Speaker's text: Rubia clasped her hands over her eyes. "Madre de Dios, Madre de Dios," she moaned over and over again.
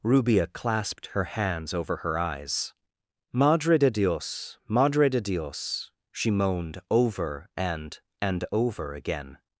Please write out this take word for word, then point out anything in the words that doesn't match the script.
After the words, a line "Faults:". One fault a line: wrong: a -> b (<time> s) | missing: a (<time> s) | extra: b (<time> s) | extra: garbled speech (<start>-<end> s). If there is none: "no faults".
Rubia clasped her hands over her eyes. "Madre de Dios, Madre de Dios," she moaned over and and over again.
Faults:
extra: and (8.2 s)